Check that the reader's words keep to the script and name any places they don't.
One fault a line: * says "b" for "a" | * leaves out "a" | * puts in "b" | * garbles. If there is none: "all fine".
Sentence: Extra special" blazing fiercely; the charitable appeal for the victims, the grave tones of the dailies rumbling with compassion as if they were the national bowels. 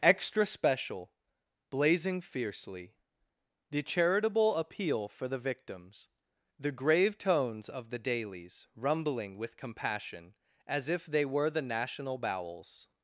all fine